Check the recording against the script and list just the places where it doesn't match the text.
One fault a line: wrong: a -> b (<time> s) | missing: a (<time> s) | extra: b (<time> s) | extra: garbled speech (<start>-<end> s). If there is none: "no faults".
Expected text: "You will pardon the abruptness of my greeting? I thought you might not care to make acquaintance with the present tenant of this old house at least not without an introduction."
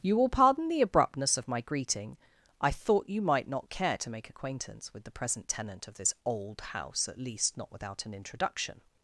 no faults